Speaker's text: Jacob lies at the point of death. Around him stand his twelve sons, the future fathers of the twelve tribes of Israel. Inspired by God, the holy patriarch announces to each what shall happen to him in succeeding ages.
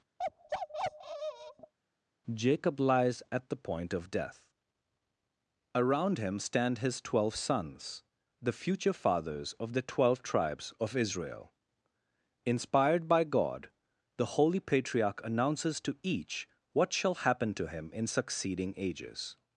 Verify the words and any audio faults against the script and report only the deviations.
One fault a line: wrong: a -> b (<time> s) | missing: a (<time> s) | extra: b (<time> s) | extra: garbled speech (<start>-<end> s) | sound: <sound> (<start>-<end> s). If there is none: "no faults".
sound: bark (0.2-1.7 s)